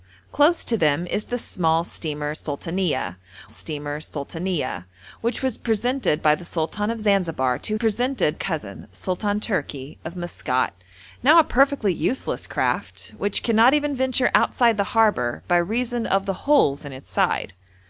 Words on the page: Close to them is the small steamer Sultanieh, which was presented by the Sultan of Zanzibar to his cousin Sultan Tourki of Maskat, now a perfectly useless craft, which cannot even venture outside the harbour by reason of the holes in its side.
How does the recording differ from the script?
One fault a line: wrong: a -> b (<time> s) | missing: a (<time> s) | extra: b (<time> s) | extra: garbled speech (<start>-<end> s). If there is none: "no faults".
extra: steamer Sultanieh (3.5 s)
wrong: his -> presented (7.7 s)